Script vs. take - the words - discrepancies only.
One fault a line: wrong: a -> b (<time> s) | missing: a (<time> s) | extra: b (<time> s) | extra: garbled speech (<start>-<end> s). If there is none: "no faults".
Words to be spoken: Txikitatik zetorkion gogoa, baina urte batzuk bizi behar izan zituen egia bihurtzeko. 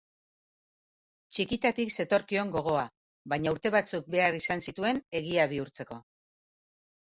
missing: bizi (4.1 s)